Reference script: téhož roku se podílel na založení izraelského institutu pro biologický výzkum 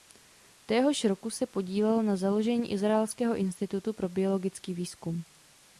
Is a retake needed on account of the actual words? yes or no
no